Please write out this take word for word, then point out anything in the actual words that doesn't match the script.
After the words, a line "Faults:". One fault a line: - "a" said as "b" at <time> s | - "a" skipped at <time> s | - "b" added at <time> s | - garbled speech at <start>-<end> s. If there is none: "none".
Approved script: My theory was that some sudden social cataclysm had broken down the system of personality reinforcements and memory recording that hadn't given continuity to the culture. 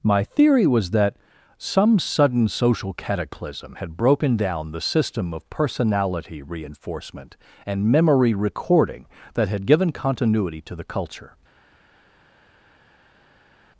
My theory was that some sudden social cataclysm had broken down the system of personality reinforcement and memory recording that had given continuity to the culture.
Faults:
- "reinforcements" said as "reinforcement" at 6.4 s
- "hadn't" said as "had" at 9.5 s